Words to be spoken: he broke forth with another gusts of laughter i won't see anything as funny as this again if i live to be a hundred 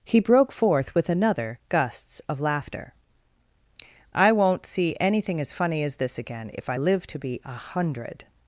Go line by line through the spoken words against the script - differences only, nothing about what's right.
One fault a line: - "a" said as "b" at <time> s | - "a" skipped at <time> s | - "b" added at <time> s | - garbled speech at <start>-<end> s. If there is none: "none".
none